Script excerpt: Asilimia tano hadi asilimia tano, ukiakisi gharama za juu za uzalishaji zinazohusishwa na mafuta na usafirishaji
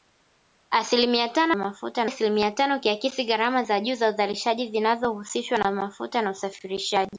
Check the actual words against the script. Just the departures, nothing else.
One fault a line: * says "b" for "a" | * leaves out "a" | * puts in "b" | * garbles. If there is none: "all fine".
* says "mafuta" for "hadi"